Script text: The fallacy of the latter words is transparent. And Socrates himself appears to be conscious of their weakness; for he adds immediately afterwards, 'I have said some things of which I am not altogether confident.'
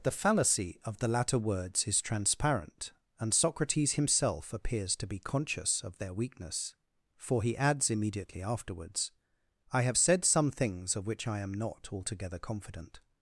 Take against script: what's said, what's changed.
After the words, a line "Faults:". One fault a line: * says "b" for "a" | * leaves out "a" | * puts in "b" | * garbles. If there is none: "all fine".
The fallacy of the latter words is transparent. And Socrates himself appears to be conscious of their weakness; for he adds immediately afterwards, 'I have said some things of which I am not altogether confident.'
Faults:
all fine